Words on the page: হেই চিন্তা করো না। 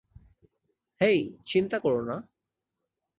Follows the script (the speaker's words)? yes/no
yes